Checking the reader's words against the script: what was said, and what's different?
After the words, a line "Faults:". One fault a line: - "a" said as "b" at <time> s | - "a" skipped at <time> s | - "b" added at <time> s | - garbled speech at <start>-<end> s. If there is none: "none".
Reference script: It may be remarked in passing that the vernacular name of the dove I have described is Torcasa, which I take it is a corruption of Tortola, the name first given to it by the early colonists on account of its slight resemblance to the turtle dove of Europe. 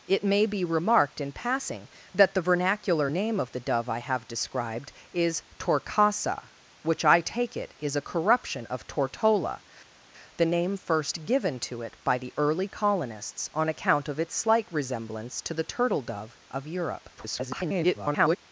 It may be remarked in passing that the vernacular name of the dove I have described is Torcasa, which I take it is a corruption of Tortola, the name first given to it by the early colonists on account of its slight resemblance to the turtle dove of Europe. [garbled]
Faults:
- garbled speech at 17.2-18.4 s